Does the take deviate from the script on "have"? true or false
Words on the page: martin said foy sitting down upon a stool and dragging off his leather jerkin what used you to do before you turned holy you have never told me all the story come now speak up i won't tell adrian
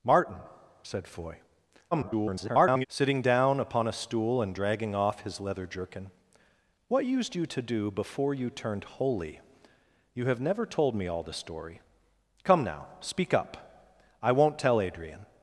false